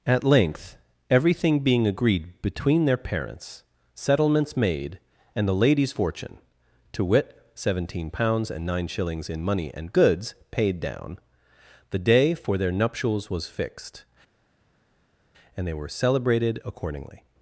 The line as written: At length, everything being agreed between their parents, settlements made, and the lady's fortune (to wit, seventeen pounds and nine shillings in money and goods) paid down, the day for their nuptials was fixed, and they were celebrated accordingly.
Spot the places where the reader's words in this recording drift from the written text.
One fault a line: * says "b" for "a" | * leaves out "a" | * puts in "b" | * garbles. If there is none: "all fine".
all fine